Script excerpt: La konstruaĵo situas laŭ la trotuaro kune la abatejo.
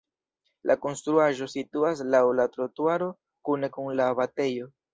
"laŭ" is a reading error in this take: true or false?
false